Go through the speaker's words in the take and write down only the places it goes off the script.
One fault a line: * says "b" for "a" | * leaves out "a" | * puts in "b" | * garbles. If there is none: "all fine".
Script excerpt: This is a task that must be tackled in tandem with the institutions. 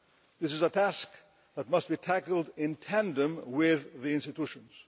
all fine